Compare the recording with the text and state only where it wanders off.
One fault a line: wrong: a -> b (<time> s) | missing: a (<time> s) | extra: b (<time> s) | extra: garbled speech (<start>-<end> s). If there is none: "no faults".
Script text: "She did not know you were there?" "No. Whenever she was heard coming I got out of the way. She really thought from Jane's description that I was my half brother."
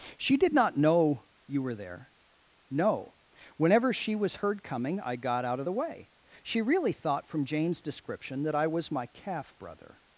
wrong: half -> calf (9.1 s)